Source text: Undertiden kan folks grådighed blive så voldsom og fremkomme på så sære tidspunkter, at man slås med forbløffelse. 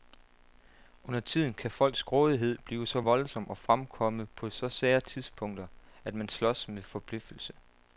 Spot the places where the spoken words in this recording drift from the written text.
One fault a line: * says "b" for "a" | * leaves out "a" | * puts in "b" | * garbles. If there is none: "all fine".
all fine